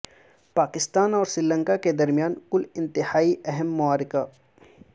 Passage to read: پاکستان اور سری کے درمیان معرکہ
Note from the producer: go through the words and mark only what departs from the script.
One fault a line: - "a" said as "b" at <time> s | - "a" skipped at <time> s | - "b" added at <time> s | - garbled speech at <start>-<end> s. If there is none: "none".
- "لنکا" added at 1.4 s
- "کل انتہائی اہم" added at 2.5 s